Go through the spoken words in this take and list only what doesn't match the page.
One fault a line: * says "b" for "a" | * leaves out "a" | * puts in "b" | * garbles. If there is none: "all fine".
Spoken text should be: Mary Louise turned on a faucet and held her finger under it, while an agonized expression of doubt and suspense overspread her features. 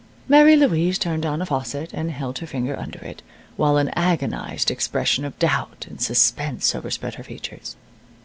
all fine